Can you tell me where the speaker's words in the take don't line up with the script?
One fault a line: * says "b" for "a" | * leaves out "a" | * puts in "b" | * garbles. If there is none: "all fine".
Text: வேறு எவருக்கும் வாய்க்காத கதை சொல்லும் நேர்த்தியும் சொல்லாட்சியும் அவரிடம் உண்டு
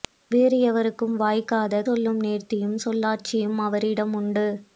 * leaves out "கதை"